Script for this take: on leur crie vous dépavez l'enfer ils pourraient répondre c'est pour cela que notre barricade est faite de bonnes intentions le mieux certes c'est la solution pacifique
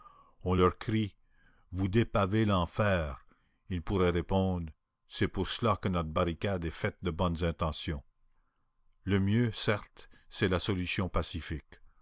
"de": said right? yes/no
yes